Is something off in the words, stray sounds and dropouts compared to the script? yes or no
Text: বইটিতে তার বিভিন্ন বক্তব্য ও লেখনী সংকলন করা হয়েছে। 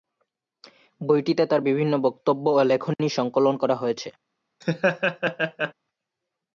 yes